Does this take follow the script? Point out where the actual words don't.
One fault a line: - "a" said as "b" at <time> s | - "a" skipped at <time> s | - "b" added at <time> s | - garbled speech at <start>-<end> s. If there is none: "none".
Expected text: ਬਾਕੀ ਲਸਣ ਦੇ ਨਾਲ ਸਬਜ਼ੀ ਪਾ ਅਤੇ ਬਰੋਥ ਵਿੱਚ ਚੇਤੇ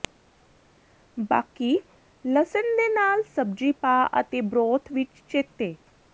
none